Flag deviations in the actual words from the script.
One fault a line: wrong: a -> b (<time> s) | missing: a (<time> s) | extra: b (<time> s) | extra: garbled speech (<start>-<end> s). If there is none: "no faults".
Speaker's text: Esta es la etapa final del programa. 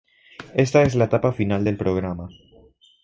no faults